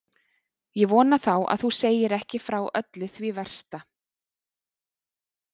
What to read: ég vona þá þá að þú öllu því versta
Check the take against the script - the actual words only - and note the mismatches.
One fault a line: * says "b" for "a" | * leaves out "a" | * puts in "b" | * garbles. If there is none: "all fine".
* leaves out "þá"
* puts in "segir ekki frá"